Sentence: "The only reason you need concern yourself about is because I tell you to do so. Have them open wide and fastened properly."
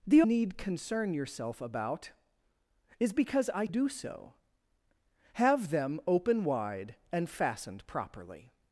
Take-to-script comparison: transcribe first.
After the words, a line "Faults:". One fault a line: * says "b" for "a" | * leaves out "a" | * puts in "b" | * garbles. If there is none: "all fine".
"The need concern yourself about is because I do so. Have them open wide and fastened properly."
Faults:
* leaves out "only reason you"
* leaves out "tell you to"